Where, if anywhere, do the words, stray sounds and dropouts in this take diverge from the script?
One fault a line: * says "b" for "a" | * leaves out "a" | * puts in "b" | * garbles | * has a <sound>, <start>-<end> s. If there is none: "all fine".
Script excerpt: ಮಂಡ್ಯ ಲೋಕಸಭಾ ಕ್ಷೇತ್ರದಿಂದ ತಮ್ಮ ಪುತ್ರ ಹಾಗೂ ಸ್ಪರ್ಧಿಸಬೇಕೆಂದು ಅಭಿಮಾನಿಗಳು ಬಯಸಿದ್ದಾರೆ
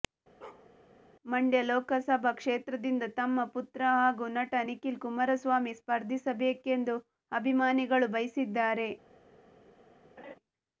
* has a bark, 0.4-0.7 s
* puts in "ನಟ ನಿಖಿಲ್ ಕುಮಾರಸ್ವಾಮಿ"
* has a laugh, 10.2-10.4 s